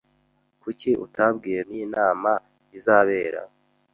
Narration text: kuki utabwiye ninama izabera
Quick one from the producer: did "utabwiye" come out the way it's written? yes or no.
yes